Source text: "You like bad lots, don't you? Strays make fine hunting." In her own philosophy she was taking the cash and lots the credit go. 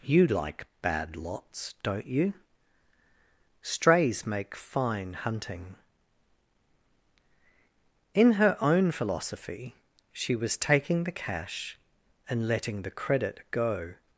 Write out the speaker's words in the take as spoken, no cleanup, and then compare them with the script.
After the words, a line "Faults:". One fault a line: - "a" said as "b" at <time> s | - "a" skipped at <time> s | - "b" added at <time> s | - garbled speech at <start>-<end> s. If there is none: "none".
"You like bad lots, don't you? Strays make fine hunting." In her own philosophy she was taking the cash and letting the credit go.
Faults:
- "lots" said as "letting" at 12.5 s